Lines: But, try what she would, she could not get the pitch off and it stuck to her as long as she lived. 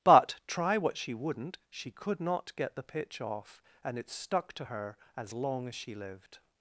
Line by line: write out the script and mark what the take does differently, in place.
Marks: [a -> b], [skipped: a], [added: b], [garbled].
But, try what she [would, -> wouldn't] she could not get the pitch off and it stuck to her as long as she lived.